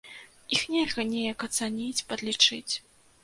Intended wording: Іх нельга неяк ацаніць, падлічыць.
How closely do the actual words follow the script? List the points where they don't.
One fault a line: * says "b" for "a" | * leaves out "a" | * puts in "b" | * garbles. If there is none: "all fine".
all fine